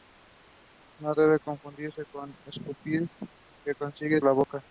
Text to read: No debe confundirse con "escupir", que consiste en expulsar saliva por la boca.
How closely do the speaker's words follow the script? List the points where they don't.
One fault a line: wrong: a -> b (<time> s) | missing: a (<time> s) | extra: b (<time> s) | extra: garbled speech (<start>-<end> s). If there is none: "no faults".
missing: expulsar saliva por (4.2 s)